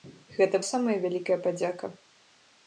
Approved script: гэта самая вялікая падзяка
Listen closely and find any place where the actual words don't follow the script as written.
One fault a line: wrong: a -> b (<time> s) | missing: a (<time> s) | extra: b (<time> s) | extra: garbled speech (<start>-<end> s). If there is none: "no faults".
no faults